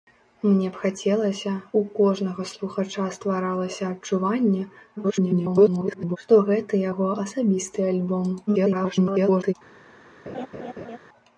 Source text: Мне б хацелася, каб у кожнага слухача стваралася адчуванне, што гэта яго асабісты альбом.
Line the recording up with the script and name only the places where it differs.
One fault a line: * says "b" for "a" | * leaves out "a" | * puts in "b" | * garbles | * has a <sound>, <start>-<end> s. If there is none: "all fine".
* leaves out "каб"
* garbles
* garbles
* has a laugh, 10.3-11.0 s